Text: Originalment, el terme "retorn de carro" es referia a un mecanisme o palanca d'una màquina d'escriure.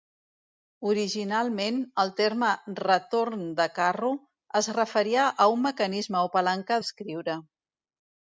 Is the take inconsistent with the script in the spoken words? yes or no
yes